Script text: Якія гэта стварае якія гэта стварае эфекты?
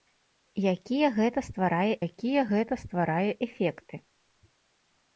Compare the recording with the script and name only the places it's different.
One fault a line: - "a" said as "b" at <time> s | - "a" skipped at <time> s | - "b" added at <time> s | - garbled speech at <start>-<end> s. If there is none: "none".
none